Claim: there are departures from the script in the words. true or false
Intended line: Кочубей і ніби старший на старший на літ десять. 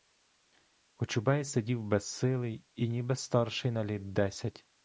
true